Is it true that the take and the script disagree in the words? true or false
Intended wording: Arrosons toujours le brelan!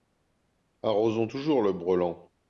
false